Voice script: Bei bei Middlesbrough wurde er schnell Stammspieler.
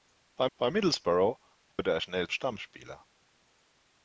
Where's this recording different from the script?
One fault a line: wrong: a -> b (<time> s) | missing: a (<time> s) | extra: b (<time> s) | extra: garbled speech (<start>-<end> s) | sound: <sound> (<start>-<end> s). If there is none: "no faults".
sound: dropout (1.7-1.8 s)